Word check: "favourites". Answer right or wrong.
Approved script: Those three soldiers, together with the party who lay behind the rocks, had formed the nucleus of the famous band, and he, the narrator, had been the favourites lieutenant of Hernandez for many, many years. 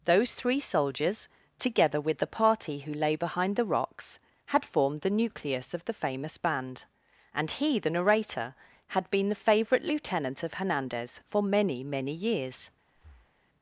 wrong